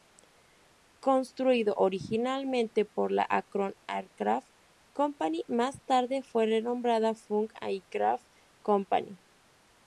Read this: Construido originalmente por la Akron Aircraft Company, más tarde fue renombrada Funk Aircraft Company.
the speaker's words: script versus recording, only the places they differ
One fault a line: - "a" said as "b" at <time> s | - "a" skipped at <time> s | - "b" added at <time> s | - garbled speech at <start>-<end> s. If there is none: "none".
none